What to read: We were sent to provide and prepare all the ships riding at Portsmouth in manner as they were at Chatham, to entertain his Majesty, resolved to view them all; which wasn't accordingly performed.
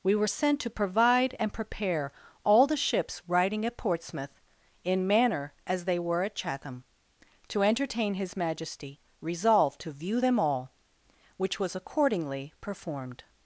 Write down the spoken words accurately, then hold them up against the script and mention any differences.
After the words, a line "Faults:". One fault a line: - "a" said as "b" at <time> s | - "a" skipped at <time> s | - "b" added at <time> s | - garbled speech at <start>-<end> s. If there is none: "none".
We were sent to provide and prepare all the ships riding at Portsmouth in manner as they were at Chatham, to entertain his Majesty, resolved to view them all; which was accordingly performed.
Faults:
- "wasn't" said as "was" at 11.6 s